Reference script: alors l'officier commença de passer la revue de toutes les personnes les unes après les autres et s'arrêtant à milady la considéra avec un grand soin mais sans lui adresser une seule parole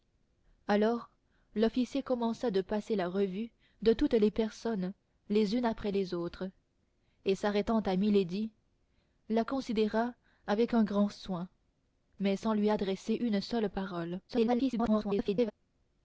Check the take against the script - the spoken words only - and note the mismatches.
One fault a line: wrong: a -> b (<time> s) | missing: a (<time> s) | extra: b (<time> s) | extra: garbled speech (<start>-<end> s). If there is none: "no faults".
extra: garbled speech (14.3-15.5 s)